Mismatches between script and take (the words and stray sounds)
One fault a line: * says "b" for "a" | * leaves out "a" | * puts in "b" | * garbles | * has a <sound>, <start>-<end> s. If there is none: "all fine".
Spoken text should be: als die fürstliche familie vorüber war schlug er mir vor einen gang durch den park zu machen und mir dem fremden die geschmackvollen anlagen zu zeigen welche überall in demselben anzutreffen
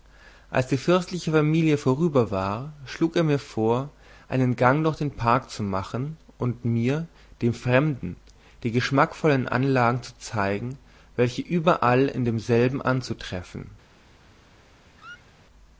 * has a squeak, 15.0-15.4 s